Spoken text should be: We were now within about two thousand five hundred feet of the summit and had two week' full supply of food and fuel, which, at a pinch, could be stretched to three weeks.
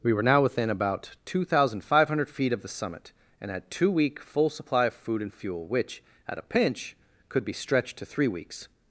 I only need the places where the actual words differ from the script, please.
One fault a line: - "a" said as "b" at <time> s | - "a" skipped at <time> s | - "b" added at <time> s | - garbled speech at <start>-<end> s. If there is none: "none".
none